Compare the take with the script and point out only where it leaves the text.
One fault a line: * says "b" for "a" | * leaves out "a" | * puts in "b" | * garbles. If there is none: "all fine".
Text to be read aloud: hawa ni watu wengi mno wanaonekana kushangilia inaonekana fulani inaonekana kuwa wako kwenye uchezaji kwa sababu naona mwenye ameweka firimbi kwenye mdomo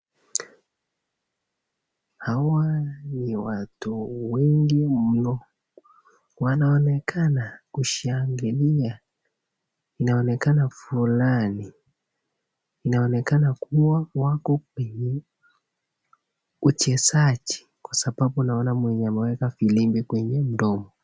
all fine